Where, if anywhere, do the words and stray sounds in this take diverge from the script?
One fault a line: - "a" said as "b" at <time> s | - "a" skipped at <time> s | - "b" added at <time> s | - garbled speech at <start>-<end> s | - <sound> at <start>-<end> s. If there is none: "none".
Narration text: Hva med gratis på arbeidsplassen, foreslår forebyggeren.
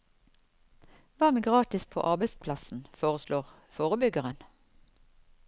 none